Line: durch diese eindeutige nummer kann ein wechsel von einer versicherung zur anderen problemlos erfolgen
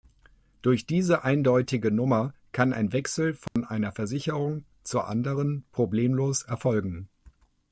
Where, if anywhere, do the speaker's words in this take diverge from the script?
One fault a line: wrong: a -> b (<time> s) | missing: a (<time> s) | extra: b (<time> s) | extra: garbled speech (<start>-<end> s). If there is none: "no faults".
no faults